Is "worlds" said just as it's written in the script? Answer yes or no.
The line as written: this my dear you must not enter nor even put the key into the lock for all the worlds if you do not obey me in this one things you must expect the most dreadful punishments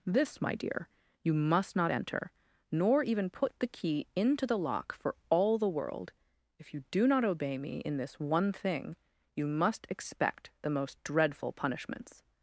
no